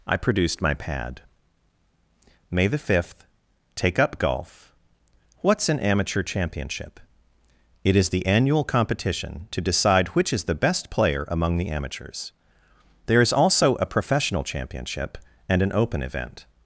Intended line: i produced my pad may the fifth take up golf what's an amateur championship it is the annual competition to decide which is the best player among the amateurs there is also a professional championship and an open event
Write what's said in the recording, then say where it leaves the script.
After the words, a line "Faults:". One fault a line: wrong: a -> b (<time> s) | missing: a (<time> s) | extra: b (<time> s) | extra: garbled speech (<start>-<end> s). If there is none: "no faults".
i produced my pad may the fifth take up golf what's an amateur championship it is the annual competition to decide which is the best player among the amateurs there is also a professional championship and an open event
Faults:
no faults